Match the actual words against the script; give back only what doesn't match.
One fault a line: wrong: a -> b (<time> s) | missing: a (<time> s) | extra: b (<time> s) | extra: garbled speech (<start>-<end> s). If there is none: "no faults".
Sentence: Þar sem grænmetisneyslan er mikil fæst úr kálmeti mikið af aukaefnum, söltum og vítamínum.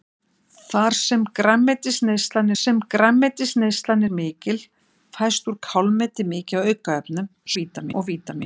extra: sem grænmetisneyslan (2.5 s)
wrong: söltum -> vítamínum (7.6 s)